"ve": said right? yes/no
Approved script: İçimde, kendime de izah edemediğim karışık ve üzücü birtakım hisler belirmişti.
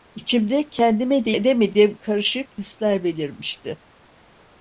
no